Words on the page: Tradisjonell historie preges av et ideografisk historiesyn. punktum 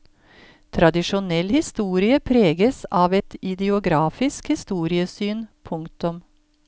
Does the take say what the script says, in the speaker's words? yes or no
yes